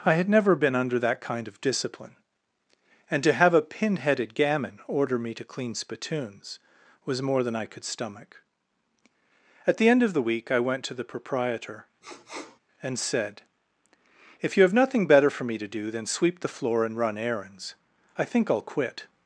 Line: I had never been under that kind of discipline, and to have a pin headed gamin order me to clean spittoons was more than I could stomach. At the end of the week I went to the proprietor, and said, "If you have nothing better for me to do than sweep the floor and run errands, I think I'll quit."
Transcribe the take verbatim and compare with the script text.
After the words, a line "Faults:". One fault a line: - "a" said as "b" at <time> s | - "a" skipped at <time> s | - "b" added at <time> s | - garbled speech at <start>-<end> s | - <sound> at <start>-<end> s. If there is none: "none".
I had never been under that kind of discipline, and to have a pin headed gamin order me to clean spittoons was more than I could stomach. At the end of the week I went to the proprietor, and said, "If you have nothing better for me to do than sweep the floor and run errands, I think I'll quit."
Faults:
- sniff at 12.0-12.6 s